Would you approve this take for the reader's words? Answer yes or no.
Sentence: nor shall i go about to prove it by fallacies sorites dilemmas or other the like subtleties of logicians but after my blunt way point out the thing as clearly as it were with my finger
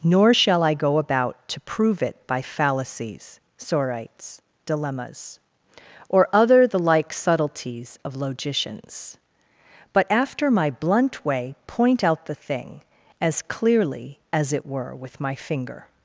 yes